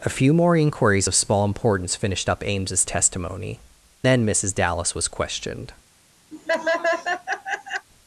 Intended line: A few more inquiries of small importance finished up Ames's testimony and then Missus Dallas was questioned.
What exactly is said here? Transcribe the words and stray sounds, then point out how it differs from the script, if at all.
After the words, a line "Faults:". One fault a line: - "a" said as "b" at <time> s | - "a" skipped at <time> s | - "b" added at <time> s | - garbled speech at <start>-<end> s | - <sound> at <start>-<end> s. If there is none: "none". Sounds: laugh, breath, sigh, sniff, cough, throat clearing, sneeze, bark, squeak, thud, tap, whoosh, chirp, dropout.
A few more inquiries of small importance finished up Ames's testimony then Missus Dallas was questioned.
Faults:
- "and" skipped at 3.6 s
- laugh at 6.3-7.9 s